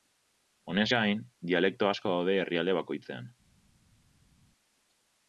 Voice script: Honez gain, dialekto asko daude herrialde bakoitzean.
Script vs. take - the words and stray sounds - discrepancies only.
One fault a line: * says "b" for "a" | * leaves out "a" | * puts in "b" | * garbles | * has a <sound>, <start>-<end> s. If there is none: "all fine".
all fine